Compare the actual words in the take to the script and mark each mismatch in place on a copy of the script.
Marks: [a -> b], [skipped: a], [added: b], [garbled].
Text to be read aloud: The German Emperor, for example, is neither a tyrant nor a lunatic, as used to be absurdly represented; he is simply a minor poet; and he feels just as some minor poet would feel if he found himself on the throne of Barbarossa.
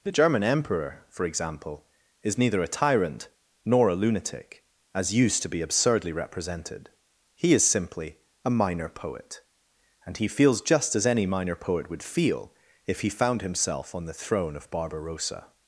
The German Emperor, for example, is neither a tyrant nor a lunatic, as used to be absurdly represented; he is simply a minor poet; and he feels just as [some -> any] minor poet would feel if he found himself on the throne of Barbarossa.